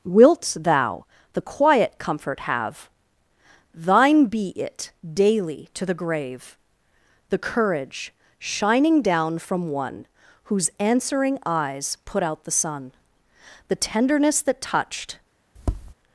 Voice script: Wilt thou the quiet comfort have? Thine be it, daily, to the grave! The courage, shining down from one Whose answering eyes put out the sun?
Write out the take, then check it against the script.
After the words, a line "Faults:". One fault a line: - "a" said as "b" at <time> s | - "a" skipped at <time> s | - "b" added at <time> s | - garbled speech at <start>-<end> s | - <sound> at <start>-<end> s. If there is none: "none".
Wilt thou the quiet comfort have? Thine be it, daily, to the grave! The courage, shining down from one Whose answering eyes put out the sun? The tenderness that touched
Faults:
- "The tenderness that touched" added at 13.7 s
- tap at 15.6-15.9 s